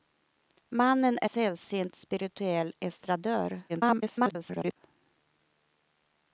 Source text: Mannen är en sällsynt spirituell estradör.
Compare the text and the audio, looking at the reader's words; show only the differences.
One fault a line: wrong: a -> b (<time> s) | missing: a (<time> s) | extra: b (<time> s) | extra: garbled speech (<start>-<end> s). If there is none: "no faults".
missing: en (1.3 s)
extra: garbled speech (3.7-4.8 s)